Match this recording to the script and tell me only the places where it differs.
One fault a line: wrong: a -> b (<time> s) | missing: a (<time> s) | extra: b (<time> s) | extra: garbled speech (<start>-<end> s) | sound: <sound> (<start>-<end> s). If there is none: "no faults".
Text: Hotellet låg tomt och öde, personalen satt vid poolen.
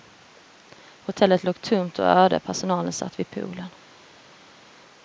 no faults